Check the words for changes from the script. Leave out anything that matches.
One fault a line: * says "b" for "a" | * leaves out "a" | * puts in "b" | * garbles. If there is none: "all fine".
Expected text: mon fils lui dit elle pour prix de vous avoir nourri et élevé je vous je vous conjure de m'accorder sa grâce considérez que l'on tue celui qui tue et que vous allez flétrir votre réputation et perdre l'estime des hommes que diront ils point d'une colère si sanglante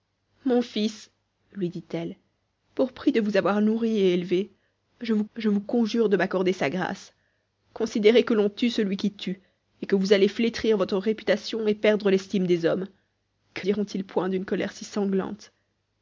all fine